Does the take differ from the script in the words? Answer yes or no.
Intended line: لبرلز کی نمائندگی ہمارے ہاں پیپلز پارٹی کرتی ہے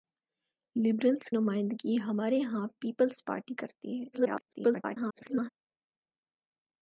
yes